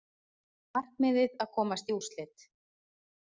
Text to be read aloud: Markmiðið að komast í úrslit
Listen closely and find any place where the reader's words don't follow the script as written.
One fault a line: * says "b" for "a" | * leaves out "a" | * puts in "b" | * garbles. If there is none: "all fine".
all fine